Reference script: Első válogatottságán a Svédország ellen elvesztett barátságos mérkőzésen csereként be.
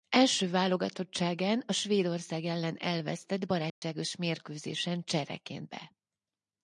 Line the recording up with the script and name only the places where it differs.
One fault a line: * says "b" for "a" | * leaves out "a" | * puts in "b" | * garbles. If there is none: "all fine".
all fine